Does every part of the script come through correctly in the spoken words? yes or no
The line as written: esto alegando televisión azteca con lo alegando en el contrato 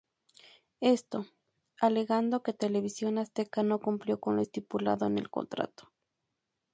no